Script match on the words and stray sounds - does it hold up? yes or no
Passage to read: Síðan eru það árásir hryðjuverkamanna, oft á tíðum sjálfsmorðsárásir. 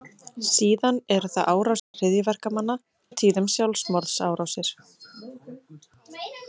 no